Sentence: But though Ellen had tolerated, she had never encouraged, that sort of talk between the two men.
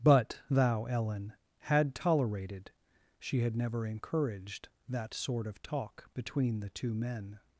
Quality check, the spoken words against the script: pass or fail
fail